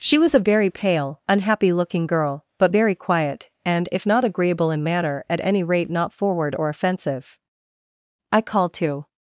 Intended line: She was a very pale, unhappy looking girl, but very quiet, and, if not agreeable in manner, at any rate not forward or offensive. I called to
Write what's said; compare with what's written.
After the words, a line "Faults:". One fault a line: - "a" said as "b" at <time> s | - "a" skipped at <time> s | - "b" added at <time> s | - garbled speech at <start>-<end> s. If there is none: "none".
She was a very pale, unhappy looking girl, but very quiet, and, if not agreeable in manner, at any rate not forward or offensive. I called to
Faults:
none